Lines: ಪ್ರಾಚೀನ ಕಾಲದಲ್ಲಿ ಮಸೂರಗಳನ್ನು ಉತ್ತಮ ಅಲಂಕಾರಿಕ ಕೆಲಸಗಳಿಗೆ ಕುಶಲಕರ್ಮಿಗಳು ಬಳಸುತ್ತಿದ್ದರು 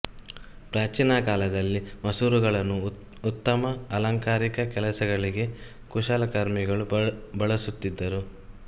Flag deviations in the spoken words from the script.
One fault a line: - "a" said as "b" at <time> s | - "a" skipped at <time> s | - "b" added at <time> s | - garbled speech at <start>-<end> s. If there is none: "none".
none